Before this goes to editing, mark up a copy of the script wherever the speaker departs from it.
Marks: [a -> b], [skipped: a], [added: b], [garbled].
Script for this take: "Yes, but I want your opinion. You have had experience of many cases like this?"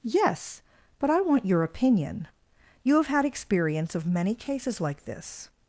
"Yes, but I want your opinion. You have had experience of many cases like this?"